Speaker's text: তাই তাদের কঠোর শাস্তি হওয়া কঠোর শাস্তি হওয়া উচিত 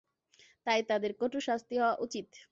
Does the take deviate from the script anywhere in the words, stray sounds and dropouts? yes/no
yes